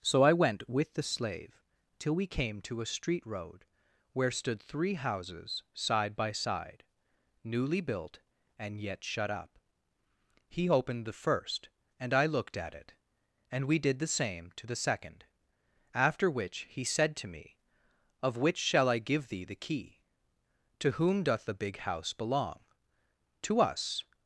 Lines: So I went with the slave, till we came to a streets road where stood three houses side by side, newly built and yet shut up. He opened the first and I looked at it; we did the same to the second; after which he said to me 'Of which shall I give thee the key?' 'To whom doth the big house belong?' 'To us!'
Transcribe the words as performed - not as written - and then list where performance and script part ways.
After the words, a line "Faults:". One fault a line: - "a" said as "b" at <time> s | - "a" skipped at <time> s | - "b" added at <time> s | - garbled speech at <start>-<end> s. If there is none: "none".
So I went with the slave, till we came to a street road where stood three houses side by side, newly built and yet shut up. He opened the first and I looked at it; and we did the same to the second; after which he said to me 'Of which shall I give thee the key?' 'To whom doth the big house belong?' 'To us!'
Faults:
- "streets" said as "street" at 2.9 s
- "and" added at 13.5 s